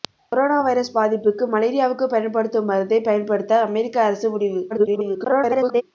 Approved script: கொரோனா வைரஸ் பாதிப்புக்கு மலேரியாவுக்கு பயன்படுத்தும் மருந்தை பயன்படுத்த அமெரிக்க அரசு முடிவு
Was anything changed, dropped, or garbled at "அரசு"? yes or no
no